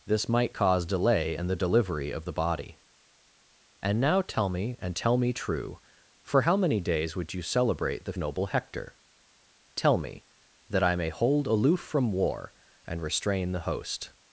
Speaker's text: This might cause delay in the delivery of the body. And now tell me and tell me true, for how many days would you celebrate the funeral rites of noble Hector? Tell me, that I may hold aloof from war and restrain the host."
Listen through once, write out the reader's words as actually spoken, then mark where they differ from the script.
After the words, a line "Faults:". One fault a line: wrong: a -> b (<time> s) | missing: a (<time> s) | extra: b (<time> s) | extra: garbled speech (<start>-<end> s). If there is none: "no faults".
This might cause delay in the delivery of the body. And now tell me and tell me true, for how many days would you celebrate the noble Hector? Tell me, that I may hold aloof from war and restrain the host."
Faults:
missing: funeral rites of (8.1 s)